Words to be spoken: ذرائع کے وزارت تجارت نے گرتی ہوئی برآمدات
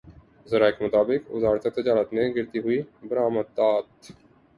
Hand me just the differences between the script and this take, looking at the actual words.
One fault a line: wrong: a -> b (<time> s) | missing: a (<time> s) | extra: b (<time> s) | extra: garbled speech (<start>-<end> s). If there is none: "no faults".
extra: مطابق (0.8 s)